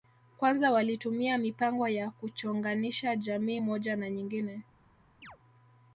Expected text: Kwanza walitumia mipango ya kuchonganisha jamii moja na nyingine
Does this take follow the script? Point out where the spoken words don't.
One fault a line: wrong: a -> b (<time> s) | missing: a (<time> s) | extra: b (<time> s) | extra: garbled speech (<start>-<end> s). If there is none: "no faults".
no faults